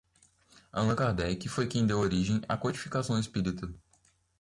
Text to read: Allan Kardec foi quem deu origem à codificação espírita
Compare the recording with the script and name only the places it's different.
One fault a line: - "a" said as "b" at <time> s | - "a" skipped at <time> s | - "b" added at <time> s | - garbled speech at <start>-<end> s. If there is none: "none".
none